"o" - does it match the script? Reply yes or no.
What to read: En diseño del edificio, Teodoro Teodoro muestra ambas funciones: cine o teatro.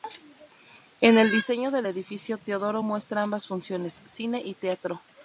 no